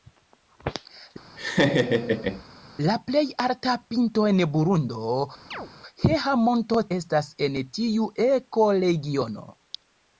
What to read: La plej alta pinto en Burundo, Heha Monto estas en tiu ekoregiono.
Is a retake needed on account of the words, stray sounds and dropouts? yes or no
yes